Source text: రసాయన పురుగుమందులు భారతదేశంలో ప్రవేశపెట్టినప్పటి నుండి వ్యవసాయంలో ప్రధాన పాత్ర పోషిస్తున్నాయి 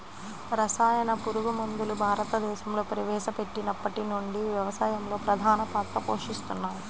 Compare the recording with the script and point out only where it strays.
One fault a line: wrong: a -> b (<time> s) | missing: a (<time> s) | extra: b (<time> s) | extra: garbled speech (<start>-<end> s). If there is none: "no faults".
no faults